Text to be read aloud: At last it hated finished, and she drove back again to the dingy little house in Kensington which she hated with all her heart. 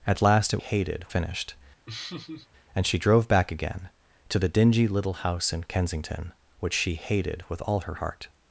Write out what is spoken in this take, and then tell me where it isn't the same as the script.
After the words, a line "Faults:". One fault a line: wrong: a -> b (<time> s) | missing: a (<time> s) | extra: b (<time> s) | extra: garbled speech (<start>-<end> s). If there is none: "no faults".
At last it hated finished, and she drove back again to the dingy little house in Kensington which she hated with all her heart.
Faults:
no faults